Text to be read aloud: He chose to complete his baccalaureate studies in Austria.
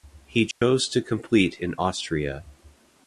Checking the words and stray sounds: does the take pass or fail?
fail